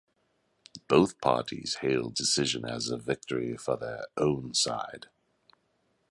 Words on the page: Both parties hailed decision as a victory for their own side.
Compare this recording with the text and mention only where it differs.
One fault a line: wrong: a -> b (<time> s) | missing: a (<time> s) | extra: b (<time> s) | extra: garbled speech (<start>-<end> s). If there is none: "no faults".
no faults